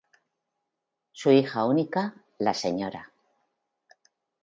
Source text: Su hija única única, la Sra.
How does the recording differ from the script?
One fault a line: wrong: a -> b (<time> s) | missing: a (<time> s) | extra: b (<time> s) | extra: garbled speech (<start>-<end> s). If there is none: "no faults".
missing: única (2.2 s)